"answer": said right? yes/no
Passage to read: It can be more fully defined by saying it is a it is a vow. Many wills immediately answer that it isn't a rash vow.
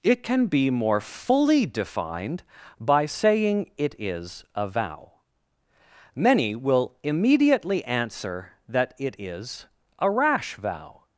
yes